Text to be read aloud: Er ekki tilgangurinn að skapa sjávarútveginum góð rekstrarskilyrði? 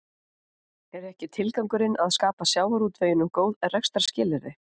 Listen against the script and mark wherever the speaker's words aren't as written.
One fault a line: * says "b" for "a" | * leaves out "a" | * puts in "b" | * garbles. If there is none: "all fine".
all fine